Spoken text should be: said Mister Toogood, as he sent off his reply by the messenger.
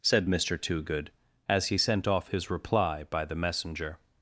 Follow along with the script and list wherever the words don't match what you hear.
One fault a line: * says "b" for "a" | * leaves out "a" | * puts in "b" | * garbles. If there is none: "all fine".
all fine